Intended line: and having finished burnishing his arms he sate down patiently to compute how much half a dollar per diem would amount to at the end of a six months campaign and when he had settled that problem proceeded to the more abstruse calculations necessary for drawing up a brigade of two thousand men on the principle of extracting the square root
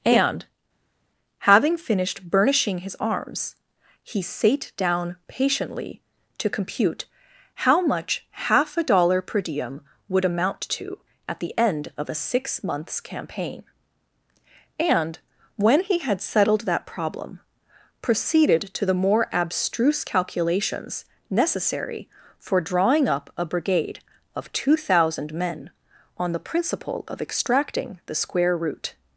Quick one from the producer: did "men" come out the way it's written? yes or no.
yes